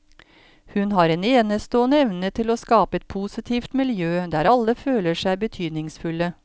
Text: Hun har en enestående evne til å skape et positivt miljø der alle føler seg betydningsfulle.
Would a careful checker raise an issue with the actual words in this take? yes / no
no